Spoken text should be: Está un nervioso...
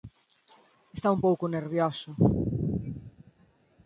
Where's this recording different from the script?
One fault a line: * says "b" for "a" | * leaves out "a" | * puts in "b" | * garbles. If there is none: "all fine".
* puts in "pouco"